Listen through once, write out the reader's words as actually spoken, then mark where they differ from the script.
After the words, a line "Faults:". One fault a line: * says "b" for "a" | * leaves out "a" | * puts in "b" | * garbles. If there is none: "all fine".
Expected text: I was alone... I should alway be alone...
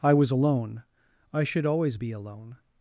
I was alone... I should always be alone...
Faults:
* says "always" for "alway"